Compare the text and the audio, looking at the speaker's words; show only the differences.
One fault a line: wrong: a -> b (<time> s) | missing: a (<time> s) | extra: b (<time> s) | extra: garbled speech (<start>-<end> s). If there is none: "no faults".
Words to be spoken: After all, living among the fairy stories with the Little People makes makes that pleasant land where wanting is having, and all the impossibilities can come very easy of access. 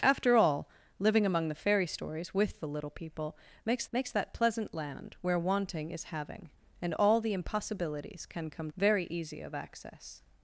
no faults